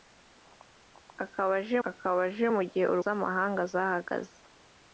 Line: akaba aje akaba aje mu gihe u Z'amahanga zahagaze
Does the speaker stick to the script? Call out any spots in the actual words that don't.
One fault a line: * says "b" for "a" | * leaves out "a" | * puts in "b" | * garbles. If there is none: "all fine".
all fine